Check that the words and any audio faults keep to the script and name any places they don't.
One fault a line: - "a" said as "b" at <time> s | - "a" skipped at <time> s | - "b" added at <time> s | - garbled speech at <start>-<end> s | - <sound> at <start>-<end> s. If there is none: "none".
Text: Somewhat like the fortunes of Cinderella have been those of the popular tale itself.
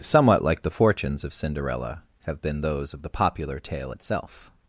none